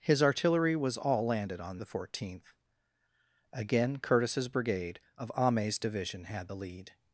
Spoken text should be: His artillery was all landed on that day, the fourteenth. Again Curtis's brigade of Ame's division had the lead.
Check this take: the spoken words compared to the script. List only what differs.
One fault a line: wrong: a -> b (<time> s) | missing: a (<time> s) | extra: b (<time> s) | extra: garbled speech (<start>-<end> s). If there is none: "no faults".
missing: that day (1.8 s)